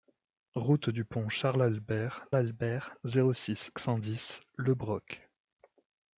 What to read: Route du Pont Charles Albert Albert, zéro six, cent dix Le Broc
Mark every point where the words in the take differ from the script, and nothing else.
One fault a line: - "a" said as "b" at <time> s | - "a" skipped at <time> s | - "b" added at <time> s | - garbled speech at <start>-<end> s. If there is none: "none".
none